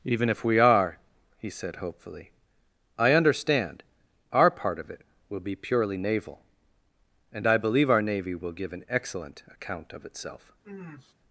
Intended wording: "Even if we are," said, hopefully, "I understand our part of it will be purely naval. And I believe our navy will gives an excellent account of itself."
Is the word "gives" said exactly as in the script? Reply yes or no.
no